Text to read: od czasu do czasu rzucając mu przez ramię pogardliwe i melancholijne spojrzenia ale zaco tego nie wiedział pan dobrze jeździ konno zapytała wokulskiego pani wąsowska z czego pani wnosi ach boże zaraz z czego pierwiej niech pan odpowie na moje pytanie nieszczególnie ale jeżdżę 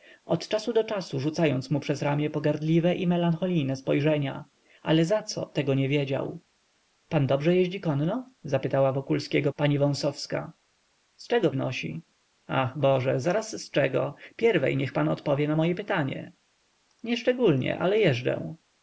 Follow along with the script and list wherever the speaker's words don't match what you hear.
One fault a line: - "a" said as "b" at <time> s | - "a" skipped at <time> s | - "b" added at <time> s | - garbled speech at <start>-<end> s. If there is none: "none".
- "pani" skipped at 11.5 s